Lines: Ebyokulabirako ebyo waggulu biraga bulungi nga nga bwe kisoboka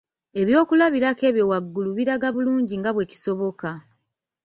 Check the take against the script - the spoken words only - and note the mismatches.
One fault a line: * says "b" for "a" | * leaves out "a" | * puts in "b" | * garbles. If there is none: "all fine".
* leaves out "nga"